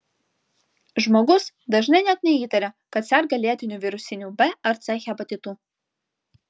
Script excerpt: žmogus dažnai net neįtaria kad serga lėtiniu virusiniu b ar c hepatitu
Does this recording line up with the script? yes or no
yes